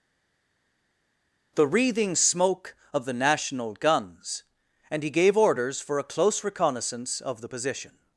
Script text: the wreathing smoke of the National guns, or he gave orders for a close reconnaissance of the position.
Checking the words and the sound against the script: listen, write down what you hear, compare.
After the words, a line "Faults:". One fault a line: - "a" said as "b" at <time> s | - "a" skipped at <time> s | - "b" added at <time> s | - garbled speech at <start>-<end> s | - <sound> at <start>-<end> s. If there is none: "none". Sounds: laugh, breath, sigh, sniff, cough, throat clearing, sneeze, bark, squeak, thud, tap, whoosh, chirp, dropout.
the wreathing smoke of the National guns, and he gave orders for a close reconnaissance of the position.
Faults:
- "or" said as "and" at 4.9 s